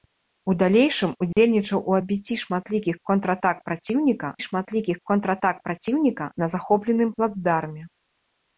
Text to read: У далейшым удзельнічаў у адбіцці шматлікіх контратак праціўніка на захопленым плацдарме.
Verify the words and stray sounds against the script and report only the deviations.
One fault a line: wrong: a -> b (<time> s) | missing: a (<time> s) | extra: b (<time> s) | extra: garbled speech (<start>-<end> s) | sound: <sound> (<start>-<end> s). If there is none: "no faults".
sound: dropout (1.3-1.4 s)
extra: шматлікіх контратак праціўніка (4.5 s)